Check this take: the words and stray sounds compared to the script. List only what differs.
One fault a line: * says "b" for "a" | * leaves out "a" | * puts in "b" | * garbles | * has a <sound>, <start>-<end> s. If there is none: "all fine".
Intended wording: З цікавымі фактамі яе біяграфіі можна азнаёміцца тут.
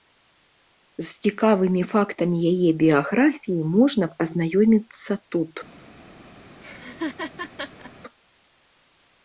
* has a laugh, 6.6-7.9 s